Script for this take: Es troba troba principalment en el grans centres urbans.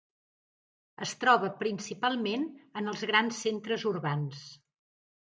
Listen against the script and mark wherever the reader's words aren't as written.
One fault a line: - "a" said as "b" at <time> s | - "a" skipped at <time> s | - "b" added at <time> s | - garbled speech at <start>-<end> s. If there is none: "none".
- "troba" skipped at 1.5 s
- "el" said as "els" at 2.9 s